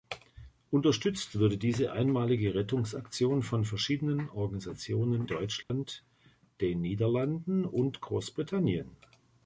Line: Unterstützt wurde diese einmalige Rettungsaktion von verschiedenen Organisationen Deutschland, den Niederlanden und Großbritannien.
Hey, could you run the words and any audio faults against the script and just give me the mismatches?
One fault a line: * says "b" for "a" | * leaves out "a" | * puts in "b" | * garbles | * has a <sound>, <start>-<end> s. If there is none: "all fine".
* has a dropout, 5.6-5.7 s